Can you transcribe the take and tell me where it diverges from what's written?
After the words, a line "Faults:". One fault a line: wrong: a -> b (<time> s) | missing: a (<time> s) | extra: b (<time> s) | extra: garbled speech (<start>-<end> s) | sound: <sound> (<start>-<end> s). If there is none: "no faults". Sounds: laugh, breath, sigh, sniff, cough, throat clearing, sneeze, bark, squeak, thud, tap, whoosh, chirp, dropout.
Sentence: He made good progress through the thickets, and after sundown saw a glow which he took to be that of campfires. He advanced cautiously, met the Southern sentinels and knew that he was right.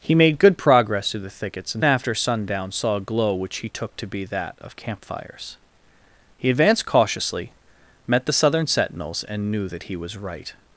He made good progress through the thickets, and after sundown saw a glow which he took to be that of campfires. He advanced cautiously, met the Southern sentinels and knew that he was right.
Faults:
no faults